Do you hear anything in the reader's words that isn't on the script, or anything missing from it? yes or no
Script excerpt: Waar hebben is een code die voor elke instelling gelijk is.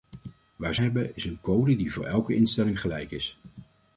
no